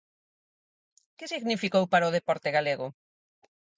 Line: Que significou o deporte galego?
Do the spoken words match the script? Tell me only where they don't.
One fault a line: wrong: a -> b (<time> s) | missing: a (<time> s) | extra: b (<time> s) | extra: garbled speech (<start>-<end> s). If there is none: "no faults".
extra: para (1.9 s)